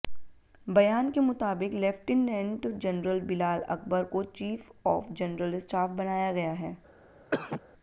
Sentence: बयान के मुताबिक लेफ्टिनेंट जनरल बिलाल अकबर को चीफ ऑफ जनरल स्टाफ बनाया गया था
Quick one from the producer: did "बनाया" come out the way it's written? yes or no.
yes